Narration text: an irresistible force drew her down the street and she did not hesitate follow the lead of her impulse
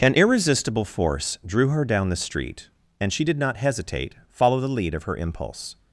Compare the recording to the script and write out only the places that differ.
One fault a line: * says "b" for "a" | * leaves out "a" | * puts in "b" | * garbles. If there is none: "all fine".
all fine